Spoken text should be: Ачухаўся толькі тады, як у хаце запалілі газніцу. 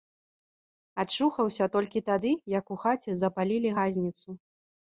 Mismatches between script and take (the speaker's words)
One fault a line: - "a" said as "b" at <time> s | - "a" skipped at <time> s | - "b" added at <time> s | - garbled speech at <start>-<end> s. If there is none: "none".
none